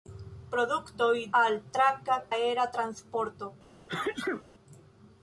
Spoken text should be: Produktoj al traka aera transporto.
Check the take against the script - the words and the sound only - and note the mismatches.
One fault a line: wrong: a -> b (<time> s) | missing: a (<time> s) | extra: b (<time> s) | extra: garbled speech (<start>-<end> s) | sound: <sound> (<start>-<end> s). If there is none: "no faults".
sound: sneeze (3.9-4.4 s)